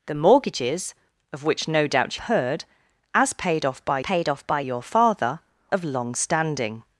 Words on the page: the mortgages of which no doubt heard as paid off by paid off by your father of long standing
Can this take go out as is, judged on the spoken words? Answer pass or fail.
pass